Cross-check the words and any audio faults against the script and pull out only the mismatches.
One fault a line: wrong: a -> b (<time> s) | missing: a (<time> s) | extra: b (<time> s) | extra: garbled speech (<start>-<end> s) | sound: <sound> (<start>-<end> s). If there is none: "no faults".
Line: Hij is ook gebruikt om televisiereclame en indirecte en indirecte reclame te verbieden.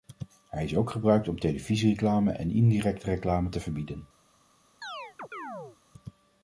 missing: en indirecte (3.1 s)
sound: chirp (4.8-5.8 s)